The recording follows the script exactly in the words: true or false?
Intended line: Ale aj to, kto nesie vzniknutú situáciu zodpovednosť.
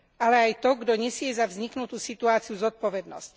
false